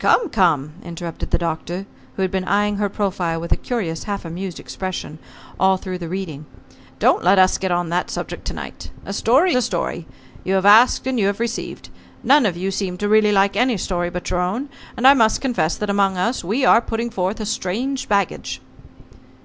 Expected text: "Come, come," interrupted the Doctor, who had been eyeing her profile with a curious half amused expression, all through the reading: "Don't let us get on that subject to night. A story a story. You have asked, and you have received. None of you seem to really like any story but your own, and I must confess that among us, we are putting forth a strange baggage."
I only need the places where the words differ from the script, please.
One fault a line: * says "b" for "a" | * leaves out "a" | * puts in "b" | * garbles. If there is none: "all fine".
all fine